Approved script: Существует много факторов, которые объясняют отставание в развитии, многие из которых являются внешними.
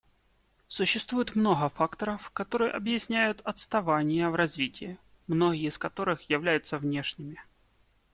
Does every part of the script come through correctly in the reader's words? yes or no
yes